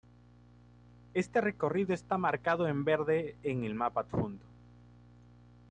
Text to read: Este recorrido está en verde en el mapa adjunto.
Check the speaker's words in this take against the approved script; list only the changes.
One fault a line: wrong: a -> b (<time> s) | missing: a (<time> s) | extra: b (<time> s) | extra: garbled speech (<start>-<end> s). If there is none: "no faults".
extra: marcado (2.2 s)